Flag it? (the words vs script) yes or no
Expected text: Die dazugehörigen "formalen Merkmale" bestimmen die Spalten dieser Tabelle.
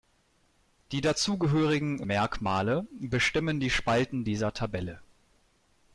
yes